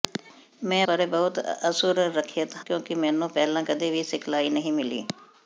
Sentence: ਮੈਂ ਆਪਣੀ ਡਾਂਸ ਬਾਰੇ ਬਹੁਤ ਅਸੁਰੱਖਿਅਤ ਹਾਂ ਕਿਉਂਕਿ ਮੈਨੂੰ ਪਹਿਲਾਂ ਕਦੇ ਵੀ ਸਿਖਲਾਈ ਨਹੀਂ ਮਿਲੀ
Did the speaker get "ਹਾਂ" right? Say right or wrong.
wrong